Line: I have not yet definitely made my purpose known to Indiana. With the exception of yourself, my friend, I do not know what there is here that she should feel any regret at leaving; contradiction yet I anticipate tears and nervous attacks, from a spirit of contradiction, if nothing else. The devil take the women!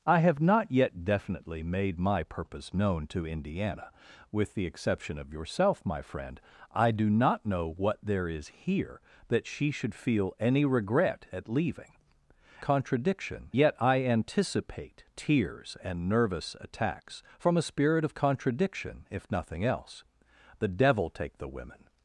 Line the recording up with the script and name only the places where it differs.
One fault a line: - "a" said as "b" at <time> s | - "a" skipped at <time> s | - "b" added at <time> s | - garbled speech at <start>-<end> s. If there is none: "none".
none